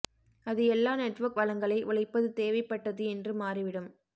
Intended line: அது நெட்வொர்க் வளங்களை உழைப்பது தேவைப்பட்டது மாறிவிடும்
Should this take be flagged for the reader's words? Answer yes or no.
yes